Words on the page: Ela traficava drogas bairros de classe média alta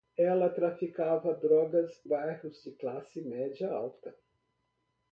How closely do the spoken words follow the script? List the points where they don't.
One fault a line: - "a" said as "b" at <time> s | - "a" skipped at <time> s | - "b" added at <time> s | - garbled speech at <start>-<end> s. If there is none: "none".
none